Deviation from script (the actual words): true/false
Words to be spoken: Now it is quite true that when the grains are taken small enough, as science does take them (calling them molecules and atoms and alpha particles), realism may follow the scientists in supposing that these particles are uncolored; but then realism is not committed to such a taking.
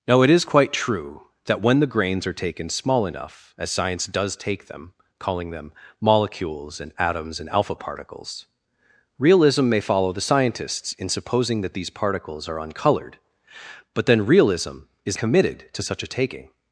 true